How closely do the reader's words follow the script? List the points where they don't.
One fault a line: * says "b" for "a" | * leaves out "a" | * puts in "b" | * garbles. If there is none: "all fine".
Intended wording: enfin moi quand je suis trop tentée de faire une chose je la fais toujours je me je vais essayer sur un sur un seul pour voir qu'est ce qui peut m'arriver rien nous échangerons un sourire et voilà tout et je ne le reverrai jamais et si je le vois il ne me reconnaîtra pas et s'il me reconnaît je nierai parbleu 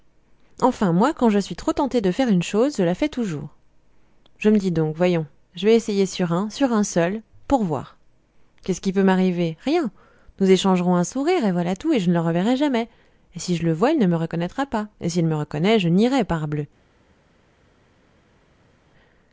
* puts in "dis donc voyons"